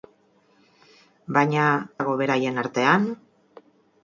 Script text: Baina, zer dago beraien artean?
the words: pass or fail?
fail